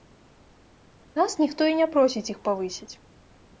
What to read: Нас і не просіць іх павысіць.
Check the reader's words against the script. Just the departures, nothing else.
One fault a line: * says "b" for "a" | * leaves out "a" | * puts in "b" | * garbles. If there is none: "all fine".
* puts in "ніхто"